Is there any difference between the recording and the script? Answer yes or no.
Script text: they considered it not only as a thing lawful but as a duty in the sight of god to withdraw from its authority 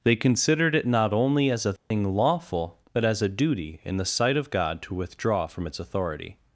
no